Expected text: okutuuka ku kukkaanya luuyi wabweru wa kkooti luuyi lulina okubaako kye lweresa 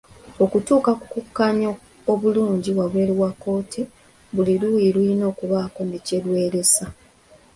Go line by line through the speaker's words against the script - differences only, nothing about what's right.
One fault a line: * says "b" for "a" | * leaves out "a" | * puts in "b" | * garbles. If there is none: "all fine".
* says "obulungi" for "luuyi"
* puts in "buli"
* puts in "ne"